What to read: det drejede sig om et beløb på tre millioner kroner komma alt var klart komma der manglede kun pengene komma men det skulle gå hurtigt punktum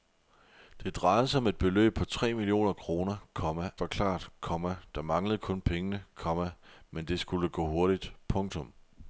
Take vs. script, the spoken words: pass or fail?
fail